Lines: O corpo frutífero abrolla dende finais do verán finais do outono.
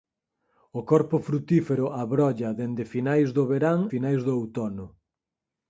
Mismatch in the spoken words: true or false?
false